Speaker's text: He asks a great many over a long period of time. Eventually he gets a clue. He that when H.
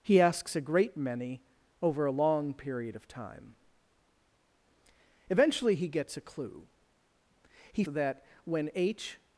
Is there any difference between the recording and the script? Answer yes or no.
no